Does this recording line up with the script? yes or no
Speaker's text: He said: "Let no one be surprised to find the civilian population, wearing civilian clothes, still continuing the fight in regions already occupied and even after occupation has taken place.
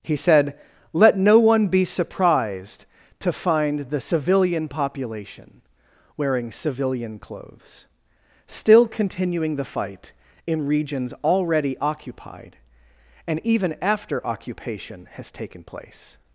yes